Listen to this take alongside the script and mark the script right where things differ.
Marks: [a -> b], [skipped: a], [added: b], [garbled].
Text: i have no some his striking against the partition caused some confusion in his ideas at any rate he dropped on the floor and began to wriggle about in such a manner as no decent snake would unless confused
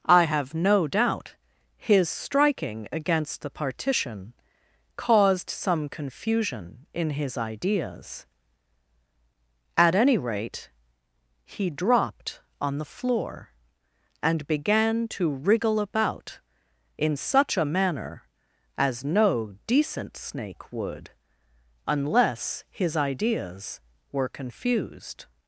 i have no [some -> doubt] his striking against the partition caused some confusion in his ideas at any rate he dropped on the floor and began to wriggle about in such a manner as no decent snake would unless [added: his ideas were] confused